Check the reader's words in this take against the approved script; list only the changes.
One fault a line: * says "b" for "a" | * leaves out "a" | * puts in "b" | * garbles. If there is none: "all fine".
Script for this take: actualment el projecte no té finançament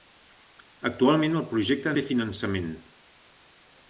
* leaves out "no"